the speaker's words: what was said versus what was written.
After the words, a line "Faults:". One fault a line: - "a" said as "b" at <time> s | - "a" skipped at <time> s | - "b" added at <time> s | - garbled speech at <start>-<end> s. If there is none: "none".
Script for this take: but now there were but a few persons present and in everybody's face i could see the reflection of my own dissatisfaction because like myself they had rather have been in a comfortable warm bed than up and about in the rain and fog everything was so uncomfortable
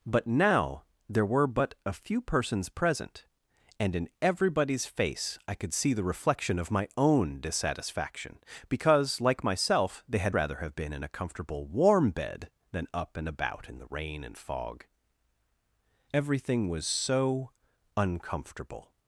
but now there were but a few persons present and in everybody's face i could see the reflection of my own dissatisfaction because like myself they had rather have been in a comfortable warm bed than up and about in the rain and fog everything was so uncomfortable
Faults:
none